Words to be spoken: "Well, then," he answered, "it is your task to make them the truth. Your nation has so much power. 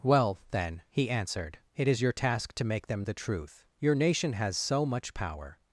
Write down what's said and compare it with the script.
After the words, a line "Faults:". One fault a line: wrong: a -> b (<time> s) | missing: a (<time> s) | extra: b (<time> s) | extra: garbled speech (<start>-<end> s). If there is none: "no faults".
"Well, then," he answered, "it is your task to make them the truth. Your nation has so much power.
Faults:
no faults